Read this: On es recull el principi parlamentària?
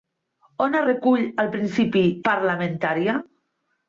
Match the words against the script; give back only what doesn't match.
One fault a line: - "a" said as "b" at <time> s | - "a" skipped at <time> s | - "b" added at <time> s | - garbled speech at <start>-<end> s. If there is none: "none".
none